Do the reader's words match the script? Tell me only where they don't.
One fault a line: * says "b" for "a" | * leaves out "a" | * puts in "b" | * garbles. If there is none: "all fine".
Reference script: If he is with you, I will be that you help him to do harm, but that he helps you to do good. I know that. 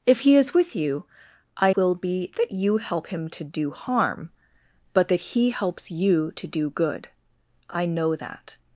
all fine